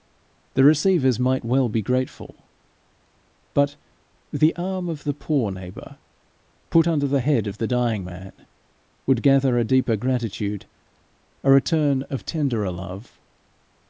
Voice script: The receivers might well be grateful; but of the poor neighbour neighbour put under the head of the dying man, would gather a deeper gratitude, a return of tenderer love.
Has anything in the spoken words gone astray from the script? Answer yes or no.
yes